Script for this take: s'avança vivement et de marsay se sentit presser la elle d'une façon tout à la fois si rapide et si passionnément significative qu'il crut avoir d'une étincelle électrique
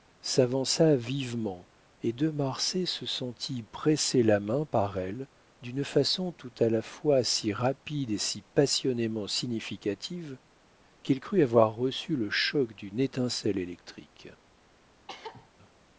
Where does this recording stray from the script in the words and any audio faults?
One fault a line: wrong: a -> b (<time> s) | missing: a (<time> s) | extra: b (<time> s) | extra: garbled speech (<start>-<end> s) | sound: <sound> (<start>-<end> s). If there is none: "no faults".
extra: main par (4.4 s)
extra: reçu le choc (11.8 s)
sound: cough (15.1-15.5 s)